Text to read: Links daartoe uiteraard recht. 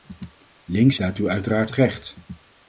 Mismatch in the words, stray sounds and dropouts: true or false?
false